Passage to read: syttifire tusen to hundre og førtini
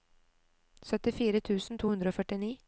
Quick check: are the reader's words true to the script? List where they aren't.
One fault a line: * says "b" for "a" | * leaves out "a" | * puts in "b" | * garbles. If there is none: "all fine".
all fine